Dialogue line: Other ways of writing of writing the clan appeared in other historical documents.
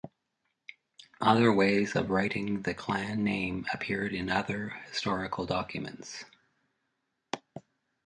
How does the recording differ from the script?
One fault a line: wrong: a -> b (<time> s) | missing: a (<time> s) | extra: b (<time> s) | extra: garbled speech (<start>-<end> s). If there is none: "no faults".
missing: of writing (2.6 s)
extra: name (3.2 s)